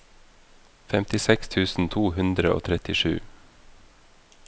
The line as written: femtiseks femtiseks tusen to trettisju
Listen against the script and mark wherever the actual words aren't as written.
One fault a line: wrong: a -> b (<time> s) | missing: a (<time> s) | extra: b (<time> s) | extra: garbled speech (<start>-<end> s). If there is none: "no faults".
missing: femtiseks (1.5 s)
extra: hundre og (2.2 s)